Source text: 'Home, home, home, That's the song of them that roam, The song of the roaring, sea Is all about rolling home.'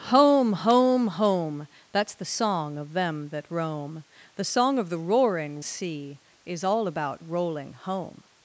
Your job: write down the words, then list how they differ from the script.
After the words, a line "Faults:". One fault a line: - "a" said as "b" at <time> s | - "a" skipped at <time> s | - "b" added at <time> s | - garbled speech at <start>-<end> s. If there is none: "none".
'Home, home, home, That's the song of them that roam, The song of the roaring, sea Is all about rolling home.'
Faults:
none